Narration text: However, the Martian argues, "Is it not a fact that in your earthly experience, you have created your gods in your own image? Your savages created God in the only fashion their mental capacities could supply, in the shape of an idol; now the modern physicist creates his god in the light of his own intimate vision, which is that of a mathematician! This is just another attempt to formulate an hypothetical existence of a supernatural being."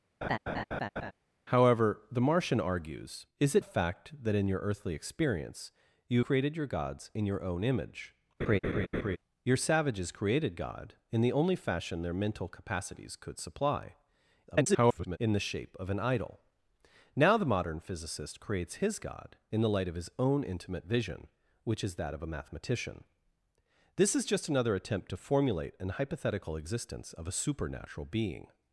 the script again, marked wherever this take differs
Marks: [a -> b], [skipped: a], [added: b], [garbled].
However, the Martian argues, "Is it [skipped: not] a fact that in your earthly experience, you [skipped: have] created your gods in your own image? Your savages created God in the only fashion their mental capacities could supply, [garbled] in the shape of an idol; now the modern physicist creates his god in the light of his own intimate vision, which is that of a mathematician! This is just another attempt to formulate an hypothetical existence of a supernatural being."